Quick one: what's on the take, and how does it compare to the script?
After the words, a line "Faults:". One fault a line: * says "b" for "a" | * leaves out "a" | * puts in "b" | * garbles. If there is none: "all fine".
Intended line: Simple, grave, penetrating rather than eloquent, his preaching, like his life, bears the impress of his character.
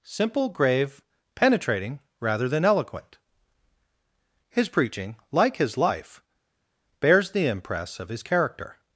Simple, grave, penetrating rather than eloquent, his preaching, like his life, bears the impress of his character.
Faults:
all fine